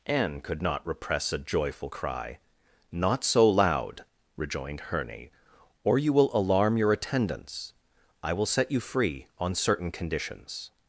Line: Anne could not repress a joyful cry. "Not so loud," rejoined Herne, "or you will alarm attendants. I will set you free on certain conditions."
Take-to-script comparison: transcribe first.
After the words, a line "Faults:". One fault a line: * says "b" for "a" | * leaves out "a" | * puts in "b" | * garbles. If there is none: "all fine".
Anne could not repress a joyful cry. "Not so loud," rejoined Herne, "or you will alarm your attendants. I will set you free on certain conditions."
Faults:
* puts in "your"